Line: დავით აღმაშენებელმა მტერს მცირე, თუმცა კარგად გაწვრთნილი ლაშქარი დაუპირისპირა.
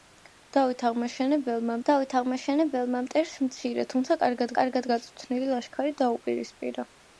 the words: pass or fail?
fail